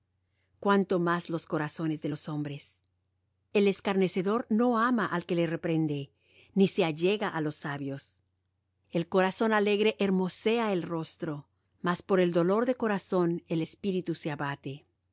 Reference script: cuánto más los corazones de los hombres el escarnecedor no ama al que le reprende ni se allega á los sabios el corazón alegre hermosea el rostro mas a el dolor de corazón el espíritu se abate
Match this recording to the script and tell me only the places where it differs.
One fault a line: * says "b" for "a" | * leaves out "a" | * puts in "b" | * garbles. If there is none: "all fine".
* says "por" for "a"